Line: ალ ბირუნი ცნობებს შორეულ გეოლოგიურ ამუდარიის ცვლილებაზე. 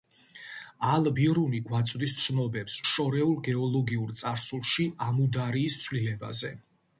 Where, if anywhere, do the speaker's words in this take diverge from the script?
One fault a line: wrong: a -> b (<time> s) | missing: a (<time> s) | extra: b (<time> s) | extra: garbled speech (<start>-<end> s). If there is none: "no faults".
extra: გვაწვდის (1.7 s)
extra: წარსულში (4.2 s)